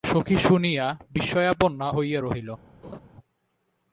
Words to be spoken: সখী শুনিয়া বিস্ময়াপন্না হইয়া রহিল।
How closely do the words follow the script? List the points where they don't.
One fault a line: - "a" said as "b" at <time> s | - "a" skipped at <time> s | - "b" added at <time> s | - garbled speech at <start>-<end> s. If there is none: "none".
none